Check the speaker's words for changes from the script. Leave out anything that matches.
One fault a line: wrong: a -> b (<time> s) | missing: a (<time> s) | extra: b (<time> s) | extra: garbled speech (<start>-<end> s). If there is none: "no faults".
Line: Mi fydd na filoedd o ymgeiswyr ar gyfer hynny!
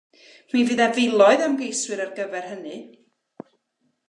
no faults